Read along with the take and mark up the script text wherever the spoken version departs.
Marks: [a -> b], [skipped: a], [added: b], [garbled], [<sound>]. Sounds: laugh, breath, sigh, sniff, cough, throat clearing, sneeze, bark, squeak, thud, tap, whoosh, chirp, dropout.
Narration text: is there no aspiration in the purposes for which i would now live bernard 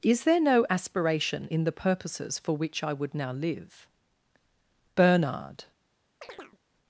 is there no aspiration in the purposes for which i would now live bernard [chirp]